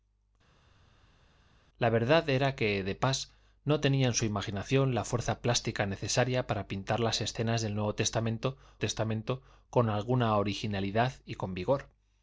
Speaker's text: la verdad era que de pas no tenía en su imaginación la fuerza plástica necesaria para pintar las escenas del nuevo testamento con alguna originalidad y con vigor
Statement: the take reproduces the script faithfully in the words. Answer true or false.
false